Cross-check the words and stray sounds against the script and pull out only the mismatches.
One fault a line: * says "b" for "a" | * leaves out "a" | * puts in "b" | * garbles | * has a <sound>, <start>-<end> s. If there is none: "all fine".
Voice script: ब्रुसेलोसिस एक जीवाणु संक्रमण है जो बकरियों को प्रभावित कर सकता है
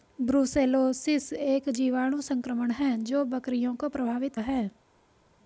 * leaves out "कर सकता"